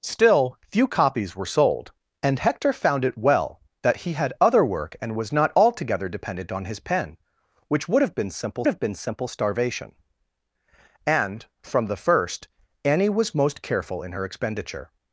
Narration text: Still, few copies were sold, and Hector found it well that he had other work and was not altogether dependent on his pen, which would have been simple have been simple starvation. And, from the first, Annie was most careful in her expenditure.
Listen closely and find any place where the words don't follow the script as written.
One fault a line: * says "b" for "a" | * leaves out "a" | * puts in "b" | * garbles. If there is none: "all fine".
all fine